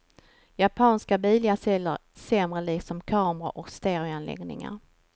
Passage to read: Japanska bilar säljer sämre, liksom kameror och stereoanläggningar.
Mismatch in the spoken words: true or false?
false